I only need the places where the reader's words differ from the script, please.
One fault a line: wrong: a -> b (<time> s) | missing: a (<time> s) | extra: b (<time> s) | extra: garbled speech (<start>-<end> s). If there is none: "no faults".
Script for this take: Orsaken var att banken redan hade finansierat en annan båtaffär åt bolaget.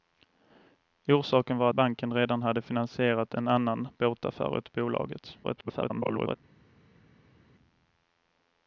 missing: att (1.7 s)
extra: garbled speech (5.4-6.4 s)